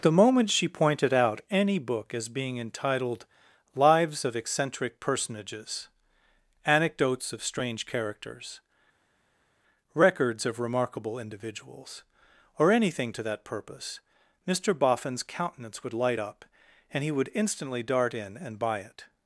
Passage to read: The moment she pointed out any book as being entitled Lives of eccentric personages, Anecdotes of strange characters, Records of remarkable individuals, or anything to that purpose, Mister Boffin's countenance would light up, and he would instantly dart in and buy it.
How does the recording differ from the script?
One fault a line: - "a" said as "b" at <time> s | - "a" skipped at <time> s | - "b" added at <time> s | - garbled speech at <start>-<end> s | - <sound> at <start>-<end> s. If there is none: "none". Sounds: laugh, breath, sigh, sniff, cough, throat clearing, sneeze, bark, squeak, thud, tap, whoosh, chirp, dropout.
none